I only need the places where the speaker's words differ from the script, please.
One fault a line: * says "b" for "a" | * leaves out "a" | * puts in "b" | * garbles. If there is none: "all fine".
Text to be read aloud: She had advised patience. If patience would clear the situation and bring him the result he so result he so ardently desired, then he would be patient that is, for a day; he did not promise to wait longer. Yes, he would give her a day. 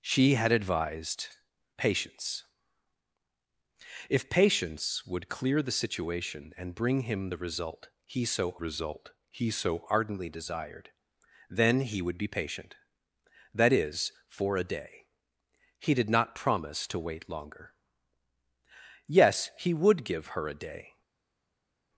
all fine